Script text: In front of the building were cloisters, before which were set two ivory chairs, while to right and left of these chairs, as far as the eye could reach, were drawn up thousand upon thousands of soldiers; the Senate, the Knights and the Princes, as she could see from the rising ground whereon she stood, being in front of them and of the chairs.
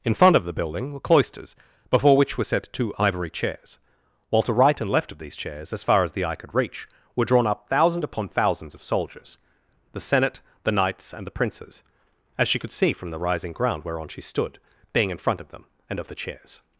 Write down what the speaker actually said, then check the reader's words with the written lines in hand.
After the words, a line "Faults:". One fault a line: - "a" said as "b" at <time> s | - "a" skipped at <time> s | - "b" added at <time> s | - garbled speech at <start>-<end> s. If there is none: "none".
In front of the building were cloisters, before which were set two ivory chairs, while to right and left of these chairs, as far as the eye could reach, were drawn up thousand upon thousands of soldiers; the Senate, the Knights and the Princes, as she could see from the rising ground whereon she stood, being in front of them and of the chairs.
Faults:
none